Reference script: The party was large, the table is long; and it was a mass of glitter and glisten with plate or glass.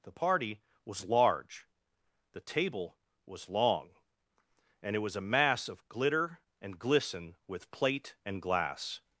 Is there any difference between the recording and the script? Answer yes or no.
yes